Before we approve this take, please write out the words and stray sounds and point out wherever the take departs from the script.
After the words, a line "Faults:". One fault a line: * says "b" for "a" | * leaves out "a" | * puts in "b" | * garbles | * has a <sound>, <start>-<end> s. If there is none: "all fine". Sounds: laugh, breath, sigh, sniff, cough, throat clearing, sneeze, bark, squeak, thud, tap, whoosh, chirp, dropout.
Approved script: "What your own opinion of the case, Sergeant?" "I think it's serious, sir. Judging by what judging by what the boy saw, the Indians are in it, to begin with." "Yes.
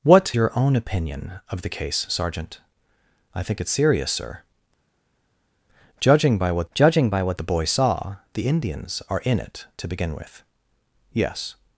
"What your own opinion of the case, Sergeant?" "I think it's serious, sir. Judging by what judging by what the boy saw, the Indians are in it, to begin with." "Yes.
Faults:
all fine